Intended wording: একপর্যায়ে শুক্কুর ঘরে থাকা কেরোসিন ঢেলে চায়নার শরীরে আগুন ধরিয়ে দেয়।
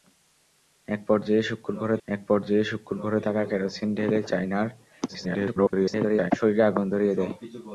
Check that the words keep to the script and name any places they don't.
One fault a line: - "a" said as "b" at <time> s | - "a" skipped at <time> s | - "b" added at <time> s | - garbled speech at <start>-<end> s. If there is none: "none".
- "একপর্যায়ে শুক্কুর ঘরে" added at 2.1 s
- garbled speech at 5.1-6.3 s